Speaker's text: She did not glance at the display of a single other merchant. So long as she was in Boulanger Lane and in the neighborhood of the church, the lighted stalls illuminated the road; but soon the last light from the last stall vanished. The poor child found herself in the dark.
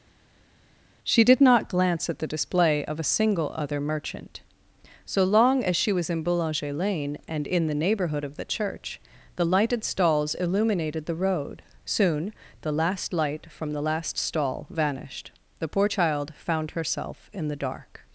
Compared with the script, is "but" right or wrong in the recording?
wrong